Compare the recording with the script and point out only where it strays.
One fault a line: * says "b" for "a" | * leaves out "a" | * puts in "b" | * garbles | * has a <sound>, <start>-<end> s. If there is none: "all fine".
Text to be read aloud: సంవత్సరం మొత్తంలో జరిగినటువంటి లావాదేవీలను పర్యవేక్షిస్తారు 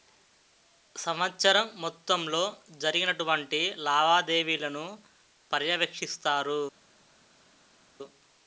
all fine